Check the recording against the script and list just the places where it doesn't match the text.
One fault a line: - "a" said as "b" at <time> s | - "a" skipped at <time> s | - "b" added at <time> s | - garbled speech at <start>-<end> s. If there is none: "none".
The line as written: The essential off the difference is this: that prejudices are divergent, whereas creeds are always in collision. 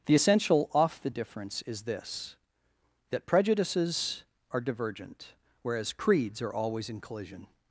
none